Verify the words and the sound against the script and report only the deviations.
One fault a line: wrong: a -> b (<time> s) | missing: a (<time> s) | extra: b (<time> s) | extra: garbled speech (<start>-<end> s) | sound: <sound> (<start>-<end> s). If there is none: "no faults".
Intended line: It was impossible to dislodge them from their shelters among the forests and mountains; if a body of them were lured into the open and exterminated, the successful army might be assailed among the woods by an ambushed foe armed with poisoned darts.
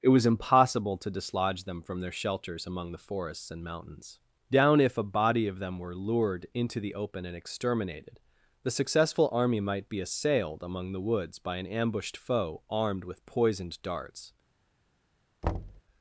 extra: down (4.5 s)
sound: thud (15.4-15.8 s)